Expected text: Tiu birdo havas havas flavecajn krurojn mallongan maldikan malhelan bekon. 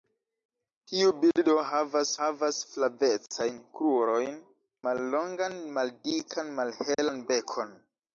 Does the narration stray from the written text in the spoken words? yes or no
no